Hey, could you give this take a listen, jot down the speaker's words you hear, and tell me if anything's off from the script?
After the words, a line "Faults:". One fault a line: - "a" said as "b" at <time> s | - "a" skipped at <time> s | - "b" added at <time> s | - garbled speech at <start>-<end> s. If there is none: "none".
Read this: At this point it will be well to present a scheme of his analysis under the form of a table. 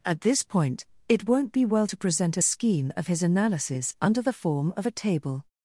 At this point it won't be well to present a scheme of his analysis under the form of a table.
Faults:
- "will" said as "won't" at 1.3 s